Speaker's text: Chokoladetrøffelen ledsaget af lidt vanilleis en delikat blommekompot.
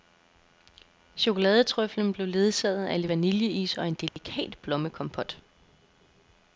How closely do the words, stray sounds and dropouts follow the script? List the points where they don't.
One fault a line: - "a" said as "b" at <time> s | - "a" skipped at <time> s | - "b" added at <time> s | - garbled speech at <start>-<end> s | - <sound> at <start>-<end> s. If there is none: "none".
- "blev" added at 2.1 s
- "og" added at 3.8 s
- dropout at 4.1-4.2 s